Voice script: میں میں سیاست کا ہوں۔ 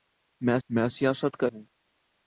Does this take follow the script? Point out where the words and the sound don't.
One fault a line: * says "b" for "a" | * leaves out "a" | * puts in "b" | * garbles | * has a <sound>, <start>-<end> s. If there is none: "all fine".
all fine